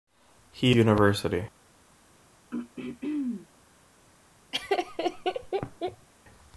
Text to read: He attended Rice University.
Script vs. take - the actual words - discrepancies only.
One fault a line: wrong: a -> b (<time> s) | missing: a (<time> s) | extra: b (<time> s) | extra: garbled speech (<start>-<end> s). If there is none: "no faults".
missing: attended Rice (0.8 s)